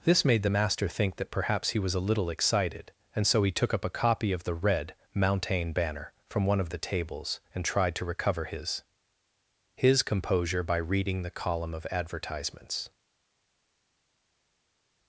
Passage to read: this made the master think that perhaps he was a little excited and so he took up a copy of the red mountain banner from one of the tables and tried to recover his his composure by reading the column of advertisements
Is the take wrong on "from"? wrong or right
right